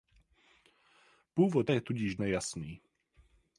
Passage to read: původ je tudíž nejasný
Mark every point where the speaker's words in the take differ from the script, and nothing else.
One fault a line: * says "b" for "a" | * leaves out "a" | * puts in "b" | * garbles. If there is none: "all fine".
all fine